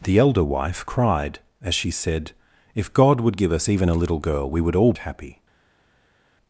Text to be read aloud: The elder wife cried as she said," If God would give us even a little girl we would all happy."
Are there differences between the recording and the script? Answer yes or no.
no